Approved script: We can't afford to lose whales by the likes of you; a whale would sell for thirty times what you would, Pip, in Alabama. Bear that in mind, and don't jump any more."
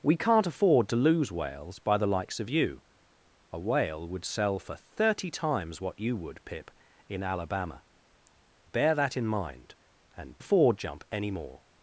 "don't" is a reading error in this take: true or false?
true